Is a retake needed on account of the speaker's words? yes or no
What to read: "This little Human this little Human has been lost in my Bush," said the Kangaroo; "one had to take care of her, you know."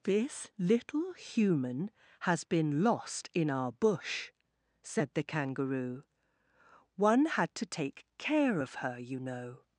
yes